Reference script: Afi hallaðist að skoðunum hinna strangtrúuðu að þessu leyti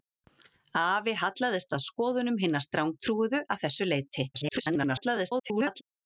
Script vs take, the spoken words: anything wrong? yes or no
yes